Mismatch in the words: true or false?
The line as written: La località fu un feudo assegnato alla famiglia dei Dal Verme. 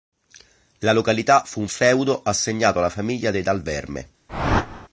false